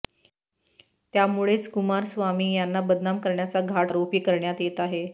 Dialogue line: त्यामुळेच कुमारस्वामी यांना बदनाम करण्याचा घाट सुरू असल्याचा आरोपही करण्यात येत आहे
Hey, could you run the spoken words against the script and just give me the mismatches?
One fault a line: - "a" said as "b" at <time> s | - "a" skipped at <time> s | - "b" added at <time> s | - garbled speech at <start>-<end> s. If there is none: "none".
- "सुरू असल्याचा" skipped at 3.9 s